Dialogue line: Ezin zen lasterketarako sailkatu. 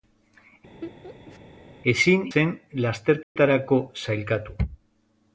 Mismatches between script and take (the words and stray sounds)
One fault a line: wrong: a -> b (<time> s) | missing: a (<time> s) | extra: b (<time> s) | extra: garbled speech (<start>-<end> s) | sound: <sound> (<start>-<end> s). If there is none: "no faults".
sound: laugh (0.8-1.4 s)
sound: dropout (3.2-3.4 s)